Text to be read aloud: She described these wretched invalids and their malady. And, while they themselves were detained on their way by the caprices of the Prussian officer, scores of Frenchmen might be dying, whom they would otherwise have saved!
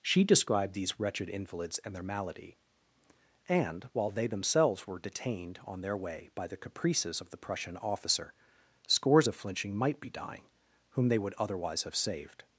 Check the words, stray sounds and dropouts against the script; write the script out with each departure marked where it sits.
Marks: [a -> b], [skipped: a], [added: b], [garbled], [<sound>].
She described these wretched invalids and their malady. And, while they themselves were detained on their way by the caprices of the Prussian officer, scores of [Frenchmen -> Flinching] might be dying, whom they would otherwise have saved!